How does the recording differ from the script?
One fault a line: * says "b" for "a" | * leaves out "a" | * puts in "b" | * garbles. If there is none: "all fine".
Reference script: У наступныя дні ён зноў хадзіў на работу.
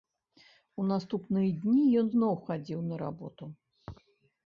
all fine